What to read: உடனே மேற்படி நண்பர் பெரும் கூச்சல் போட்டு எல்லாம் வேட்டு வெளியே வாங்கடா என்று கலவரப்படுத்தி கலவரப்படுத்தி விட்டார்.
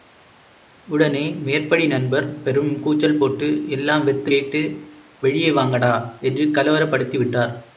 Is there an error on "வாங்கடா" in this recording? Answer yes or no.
no